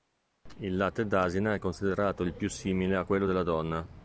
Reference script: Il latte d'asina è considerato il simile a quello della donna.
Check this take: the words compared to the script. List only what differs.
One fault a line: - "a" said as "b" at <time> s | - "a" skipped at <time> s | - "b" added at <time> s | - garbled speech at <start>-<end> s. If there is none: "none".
- "più" added at 2.3 s